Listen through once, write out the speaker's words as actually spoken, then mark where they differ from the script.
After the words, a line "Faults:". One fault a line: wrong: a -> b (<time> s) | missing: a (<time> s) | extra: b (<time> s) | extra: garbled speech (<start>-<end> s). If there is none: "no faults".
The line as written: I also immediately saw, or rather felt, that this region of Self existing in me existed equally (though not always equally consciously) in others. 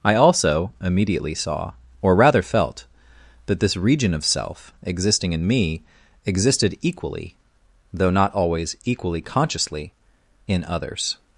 I also immediately saw, or rather felt, that this region of Self existing in me existed equally (though not always equally consciously) in others.
Faults:
no faults